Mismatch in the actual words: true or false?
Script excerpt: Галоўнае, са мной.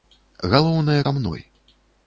false